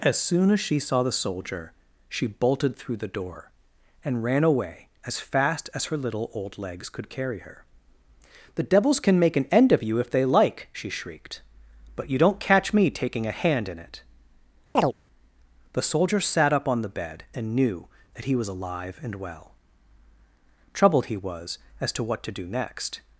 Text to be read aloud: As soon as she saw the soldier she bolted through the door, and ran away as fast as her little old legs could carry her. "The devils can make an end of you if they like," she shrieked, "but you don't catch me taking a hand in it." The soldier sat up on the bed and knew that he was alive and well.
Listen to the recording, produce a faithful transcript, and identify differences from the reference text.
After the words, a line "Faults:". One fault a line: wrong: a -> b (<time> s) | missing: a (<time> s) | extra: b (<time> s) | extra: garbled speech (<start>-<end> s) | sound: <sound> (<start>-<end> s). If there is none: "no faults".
As soon as she saw the soldier she bolted through the door, and ran away as fast as her little old legs could carry her. "The devils can make an end of you if they like," she shrieked, "but you don't catch me taking a hand in it." The soldier sat up on the bed and knew that he was alive and well. Troubled he was as to what to do next
Faults:
sound: chirp (14.7-14.9 s)
extra: Troubled he was as to what to do next (20.7 s)